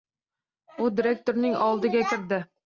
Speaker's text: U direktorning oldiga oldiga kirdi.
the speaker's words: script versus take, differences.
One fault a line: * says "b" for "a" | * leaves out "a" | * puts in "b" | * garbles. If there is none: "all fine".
* leaves out "oldiga"